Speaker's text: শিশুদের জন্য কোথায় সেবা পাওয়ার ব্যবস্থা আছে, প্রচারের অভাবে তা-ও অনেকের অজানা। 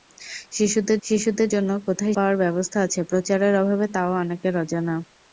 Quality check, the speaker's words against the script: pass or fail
fail